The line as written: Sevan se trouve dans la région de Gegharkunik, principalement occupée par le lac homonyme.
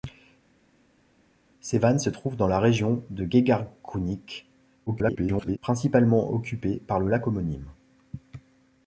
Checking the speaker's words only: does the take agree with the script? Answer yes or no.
no